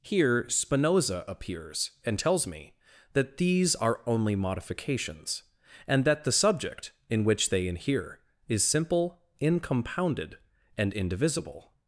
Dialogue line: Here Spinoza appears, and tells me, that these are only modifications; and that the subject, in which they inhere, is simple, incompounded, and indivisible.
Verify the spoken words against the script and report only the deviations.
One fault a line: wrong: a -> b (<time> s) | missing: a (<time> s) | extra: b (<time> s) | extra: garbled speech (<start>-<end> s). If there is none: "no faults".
no faults